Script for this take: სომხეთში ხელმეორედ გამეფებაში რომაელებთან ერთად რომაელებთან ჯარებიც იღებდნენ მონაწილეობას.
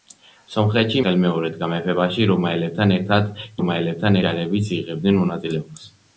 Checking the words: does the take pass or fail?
pass